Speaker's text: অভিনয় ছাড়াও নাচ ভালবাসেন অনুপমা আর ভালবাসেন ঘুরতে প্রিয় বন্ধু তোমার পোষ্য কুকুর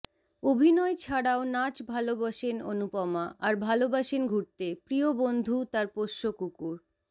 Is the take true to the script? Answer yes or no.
no